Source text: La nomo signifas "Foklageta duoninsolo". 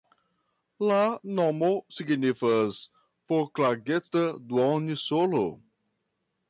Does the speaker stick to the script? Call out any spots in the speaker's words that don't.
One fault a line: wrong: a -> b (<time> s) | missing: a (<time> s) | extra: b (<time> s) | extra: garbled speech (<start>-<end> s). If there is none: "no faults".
no faults